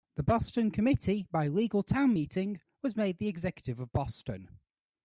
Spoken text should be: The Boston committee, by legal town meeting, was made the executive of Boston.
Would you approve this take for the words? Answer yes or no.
yes